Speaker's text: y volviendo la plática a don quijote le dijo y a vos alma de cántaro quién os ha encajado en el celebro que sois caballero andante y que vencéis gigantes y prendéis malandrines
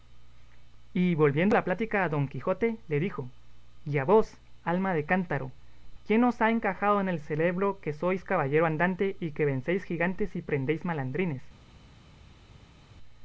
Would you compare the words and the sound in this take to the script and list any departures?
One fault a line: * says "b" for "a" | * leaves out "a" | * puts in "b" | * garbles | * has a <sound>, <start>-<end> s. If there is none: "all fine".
all fine